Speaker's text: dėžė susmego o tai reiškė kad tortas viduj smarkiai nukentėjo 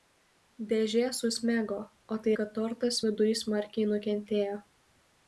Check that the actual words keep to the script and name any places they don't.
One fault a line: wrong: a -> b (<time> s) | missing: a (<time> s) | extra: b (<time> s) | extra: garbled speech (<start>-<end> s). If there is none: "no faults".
missing: reiškė (2.3 s)